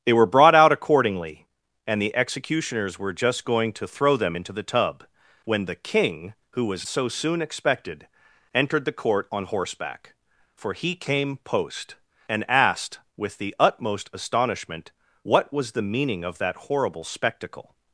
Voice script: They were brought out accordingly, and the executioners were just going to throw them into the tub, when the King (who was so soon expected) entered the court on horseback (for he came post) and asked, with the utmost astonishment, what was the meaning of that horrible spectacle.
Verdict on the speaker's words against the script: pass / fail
pass